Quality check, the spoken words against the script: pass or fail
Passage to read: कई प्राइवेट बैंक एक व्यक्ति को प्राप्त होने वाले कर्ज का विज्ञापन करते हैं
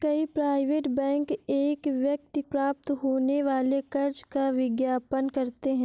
fail